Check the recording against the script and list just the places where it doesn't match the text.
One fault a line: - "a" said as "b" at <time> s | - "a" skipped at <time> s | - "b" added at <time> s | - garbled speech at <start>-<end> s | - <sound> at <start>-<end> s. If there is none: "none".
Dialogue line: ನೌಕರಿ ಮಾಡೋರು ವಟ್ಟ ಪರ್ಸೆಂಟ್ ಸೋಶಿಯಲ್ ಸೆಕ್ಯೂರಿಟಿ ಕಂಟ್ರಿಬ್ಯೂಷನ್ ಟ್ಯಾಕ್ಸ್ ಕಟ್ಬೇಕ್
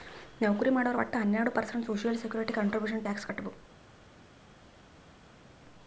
- "ಹನ್ನೆರಡು" added at 1.2 s